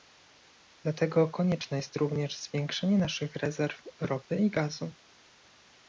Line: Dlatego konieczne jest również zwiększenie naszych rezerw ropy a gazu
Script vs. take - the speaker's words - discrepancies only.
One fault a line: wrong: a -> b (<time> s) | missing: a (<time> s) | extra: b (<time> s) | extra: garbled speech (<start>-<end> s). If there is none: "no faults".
wrong: a -> i (4.4 s)